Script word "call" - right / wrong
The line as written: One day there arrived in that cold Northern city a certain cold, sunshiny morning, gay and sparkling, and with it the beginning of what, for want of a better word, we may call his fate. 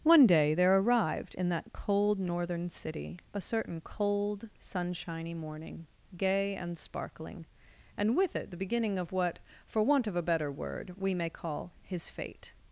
right